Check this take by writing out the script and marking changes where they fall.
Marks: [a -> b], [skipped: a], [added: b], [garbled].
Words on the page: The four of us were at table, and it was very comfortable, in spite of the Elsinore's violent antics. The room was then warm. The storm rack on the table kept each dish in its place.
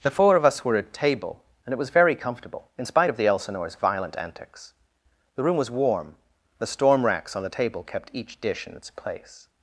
The four of us were at table, and it was very comfortable, in spite of the Elsinore's violent antics. The room was [skipped: then] warm. The storm [rack -> racks] on the table kept each dish in its place.